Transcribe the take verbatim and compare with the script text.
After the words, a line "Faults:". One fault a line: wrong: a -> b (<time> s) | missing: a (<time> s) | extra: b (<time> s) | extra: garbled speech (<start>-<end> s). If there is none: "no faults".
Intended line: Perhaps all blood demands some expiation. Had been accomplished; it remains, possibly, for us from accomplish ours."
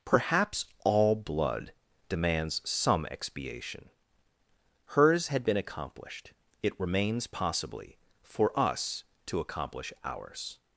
Perhaps all blood demands some expiation. Hers had been accomplished; it remains, possibly, for us to accomplish ours."
Faults:
extra: Hers (4.9 s)
wrong: from -> to (9.3 s)